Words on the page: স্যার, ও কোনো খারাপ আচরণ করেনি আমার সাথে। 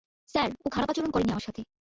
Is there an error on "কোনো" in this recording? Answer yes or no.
yes